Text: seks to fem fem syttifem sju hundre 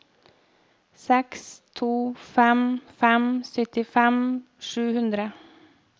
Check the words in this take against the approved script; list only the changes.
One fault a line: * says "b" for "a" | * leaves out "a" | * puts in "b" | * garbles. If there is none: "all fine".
all fine